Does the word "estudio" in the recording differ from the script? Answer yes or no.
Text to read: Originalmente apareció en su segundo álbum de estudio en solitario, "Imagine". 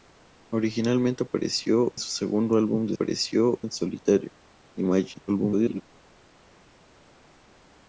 yes